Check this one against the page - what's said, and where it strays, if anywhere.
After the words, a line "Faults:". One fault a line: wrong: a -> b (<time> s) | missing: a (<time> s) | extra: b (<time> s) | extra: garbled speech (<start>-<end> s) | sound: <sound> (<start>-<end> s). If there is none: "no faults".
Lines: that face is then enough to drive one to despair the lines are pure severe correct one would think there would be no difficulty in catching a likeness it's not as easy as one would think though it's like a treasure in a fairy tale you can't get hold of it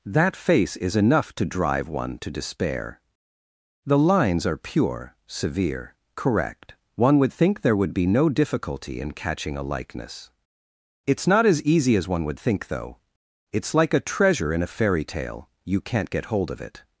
that face is enough to drive one to despair the lines are pure severe correct one would think there would be no difficulty in catching a likeness it's not as easy as one would think though it's like a treasure in a fairy tale you can't get hold of it
Faults:
missing: then (0.9 s)